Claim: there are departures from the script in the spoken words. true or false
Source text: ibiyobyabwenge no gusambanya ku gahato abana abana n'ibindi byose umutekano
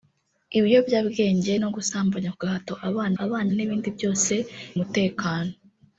false